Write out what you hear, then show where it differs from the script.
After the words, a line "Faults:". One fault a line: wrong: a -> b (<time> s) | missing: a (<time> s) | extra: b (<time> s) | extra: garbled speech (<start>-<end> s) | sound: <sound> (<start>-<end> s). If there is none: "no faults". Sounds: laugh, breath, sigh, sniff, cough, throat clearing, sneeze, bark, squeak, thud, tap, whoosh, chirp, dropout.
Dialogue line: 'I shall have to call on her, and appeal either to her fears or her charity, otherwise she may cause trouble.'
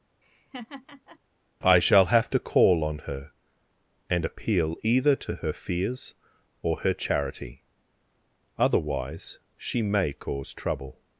'I shall have to call on her, and appeal either to her fears or her charity, otherwise she may cause trouble.'
Faults:
sound: laugh (0.2-1.2 s)